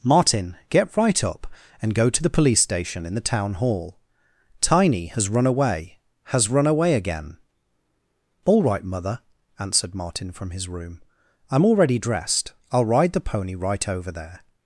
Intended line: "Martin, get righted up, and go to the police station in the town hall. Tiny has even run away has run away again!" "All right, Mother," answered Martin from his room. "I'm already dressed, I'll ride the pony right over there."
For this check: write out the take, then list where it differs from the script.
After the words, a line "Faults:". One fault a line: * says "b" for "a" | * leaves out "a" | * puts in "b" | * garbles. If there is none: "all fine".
"Martin, get right up, and go to the police station in the town hall. Tiny has run away has run away again!" "All right, Mother," answered Martin from his room. "I'm already dressed, I'll ride the pony right over there."
Faults:
* says "right" for "righted"
* leaves out "even"